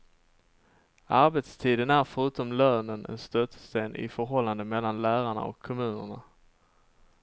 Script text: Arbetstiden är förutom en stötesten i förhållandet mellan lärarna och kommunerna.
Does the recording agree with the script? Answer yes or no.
no